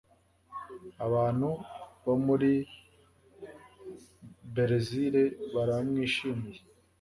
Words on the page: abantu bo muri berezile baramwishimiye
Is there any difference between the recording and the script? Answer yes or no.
no